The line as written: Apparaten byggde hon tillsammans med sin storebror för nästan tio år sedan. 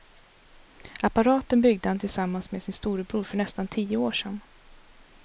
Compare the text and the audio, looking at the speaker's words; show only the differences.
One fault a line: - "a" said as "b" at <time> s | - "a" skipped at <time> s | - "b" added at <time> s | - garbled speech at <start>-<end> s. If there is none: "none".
- "hon" said as "han" at 1.9 s